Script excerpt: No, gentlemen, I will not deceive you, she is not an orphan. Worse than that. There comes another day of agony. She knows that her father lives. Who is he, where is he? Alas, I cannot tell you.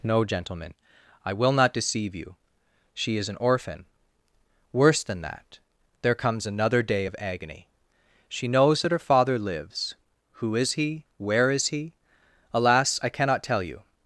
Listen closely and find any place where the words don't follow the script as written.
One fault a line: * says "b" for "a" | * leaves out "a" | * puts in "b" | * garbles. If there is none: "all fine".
* leaves out "not"